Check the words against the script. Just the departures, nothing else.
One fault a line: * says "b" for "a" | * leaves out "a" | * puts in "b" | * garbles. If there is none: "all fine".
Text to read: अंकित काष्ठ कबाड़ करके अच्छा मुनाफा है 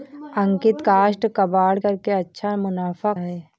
all fine